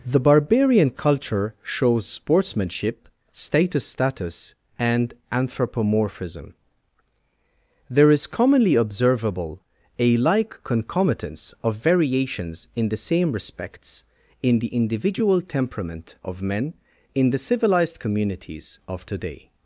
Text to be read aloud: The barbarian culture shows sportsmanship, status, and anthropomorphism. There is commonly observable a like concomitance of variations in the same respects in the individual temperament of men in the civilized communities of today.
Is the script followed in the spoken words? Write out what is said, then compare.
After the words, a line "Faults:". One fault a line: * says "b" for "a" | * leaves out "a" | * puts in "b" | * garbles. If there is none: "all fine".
The barbarian culture shows sportsmanship, status status, and anthropomorphism. There is commonly observable a like concomitance of variations in the same respects in the individual temperament of men in the civilized communities of today.
Faults:
* puts in "status"